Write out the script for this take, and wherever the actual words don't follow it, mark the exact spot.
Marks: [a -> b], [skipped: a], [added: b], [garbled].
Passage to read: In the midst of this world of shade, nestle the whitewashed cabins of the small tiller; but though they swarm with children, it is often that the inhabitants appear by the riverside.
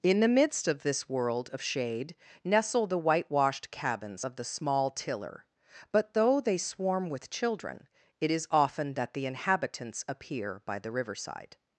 In the midst of this world of shade, nestle the whitewashed cabins of the small tiller; but though they swarm with children, it is often that the inhabitants appear by the riverside.